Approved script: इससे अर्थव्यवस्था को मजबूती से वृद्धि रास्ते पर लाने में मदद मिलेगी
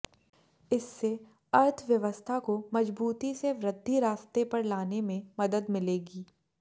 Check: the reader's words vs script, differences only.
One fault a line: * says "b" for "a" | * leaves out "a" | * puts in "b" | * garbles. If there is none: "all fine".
all fine